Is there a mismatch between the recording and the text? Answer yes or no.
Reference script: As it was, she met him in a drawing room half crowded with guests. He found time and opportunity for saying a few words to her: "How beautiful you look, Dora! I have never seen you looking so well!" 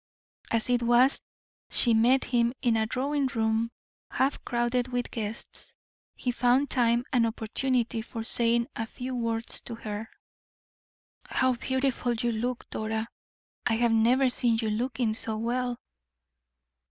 no